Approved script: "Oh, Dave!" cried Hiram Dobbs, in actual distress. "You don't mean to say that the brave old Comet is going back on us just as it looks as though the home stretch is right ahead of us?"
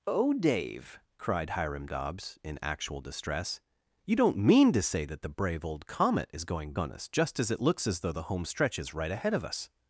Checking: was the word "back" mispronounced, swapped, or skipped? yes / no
yes